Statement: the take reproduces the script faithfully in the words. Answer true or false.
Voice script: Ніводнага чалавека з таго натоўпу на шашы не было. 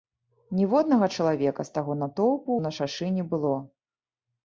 true